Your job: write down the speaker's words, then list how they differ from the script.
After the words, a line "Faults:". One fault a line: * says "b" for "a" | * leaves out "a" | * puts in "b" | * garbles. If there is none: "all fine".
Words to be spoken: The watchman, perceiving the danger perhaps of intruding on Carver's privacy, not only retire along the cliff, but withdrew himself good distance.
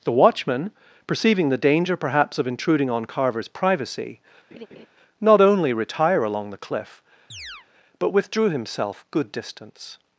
The watchman, perceiving the danger perhaps of intruding on Carver's privacy, not only retire along the cliff, but withdrew himself good distance.
Faults:
all fine